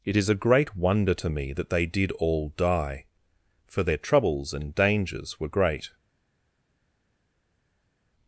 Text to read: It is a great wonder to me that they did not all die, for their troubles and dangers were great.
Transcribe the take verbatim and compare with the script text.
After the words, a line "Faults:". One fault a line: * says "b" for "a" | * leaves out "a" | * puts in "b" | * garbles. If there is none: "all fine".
It is a great wonder to me that they did all die, for their troubles and dangers were great.
Faults:
* leaves out "not"